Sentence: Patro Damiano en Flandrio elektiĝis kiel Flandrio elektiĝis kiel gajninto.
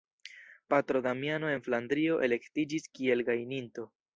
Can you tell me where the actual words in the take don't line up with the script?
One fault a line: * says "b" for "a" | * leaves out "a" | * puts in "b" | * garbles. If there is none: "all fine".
* leaves out "Flandrio elektiĝis kiel"